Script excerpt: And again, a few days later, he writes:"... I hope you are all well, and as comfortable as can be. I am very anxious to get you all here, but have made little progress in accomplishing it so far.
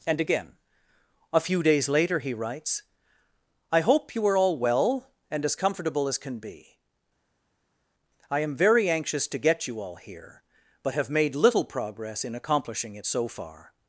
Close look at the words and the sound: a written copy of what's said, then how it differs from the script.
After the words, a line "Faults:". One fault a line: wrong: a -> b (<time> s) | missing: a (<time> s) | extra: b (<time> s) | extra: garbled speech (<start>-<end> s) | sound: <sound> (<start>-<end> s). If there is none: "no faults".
And again, a few days later, he writes:"... I hope you are all well, and as comfortable as can be. I am very anxious to get you all here, but have made little progress in accomplishing it so far.
Faults:
no faults